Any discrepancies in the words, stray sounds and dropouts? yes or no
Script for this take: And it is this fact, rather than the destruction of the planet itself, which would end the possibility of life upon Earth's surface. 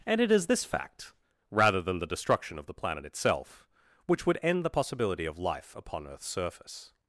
no